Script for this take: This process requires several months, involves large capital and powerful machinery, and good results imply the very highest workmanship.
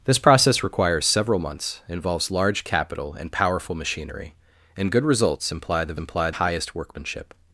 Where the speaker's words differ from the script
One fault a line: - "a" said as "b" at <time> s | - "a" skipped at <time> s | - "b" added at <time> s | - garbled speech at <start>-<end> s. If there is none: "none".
- "very" said as "imply" at 6.0 s